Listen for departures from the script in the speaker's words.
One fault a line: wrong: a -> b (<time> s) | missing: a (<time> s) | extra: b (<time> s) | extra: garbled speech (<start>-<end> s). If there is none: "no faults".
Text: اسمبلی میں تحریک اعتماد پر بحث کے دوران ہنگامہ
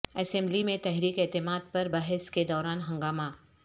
no faults